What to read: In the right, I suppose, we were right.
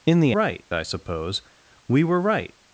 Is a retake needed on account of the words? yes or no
no